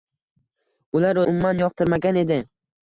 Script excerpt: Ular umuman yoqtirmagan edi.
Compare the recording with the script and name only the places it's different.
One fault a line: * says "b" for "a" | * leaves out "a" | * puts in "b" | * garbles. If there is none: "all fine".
all fine